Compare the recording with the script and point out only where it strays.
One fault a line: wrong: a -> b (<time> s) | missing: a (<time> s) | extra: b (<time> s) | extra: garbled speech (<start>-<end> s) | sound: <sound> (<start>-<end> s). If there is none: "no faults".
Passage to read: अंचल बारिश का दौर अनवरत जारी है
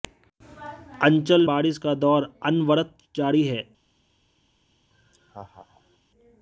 sound: laugh (4.9-6.0 s)